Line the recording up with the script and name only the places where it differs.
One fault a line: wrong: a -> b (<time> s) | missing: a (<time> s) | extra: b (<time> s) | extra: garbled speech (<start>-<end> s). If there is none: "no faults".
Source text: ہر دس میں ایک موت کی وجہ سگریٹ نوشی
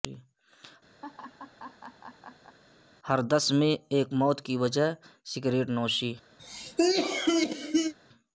no faults